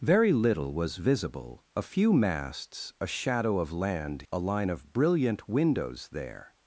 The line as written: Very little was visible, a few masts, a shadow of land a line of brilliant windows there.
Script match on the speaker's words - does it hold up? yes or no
yes